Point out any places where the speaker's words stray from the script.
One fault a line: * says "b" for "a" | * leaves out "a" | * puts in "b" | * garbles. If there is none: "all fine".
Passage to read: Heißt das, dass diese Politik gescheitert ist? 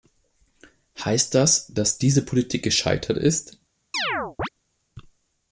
all fine